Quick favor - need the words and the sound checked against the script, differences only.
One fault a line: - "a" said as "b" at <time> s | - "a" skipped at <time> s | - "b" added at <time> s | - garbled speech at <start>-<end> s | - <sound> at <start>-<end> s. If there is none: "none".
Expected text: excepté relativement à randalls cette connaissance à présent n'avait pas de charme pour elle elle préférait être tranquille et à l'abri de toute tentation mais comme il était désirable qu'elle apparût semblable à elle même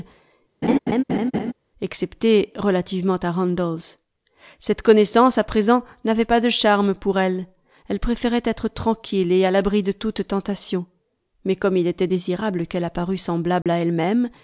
- laugh at 0.6-1.5 s
- dropout at 13.6-13.7 s